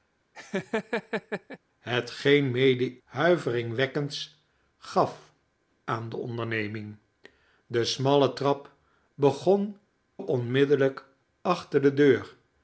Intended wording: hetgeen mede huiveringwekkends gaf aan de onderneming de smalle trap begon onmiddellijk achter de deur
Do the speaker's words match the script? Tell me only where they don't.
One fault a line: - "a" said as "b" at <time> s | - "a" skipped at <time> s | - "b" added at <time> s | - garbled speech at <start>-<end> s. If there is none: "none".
none